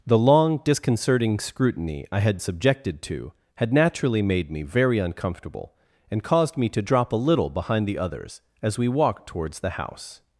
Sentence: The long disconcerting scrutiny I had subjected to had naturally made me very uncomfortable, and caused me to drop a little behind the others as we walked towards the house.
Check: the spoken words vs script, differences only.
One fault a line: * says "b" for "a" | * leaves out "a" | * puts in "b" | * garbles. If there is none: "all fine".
all fine